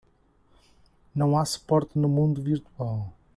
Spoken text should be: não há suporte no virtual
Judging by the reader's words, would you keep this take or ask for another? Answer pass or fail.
fail